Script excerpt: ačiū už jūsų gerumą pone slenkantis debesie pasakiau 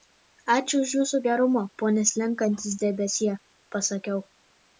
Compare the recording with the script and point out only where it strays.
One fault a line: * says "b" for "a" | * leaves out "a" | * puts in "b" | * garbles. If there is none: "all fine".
all fine